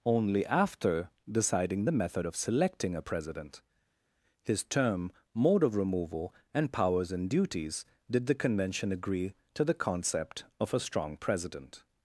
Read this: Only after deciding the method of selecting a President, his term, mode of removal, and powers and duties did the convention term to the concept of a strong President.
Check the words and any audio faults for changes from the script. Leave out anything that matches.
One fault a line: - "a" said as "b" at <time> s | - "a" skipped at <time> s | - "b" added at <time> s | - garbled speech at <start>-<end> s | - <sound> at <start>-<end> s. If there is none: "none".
- "term" said as "agree" at 8.9 s